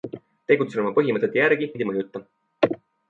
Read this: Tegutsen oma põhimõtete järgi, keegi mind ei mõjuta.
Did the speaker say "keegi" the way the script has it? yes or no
no